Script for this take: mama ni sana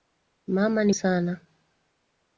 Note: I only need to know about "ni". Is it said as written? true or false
true